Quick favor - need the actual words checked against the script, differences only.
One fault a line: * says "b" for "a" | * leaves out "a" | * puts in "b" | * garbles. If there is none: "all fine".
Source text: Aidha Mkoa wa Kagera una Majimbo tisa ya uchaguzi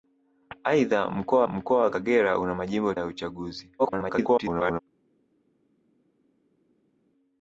* puts in "Mkoa"
* leaves out "tisa"
* garbles